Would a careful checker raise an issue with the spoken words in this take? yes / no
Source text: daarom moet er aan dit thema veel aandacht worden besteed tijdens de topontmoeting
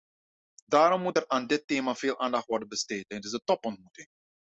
no